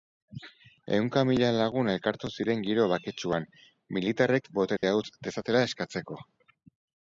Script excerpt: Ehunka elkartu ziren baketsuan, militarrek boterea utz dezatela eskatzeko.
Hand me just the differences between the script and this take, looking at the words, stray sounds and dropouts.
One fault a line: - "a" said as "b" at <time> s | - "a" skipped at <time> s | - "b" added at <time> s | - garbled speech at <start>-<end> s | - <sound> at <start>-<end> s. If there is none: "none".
- "mila lagun" added at 1.3 s
- "giro" added at 2.7 s
- dropout at 4.8-4.8 s